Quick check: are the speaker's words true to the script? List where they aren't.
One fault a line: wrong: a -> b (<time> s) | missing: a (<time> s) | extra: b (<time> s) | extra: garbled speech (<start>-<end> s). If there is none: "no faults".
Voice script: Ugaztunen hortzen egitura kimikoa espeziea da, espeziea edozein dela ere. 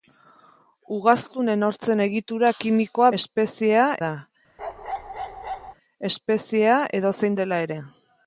no faults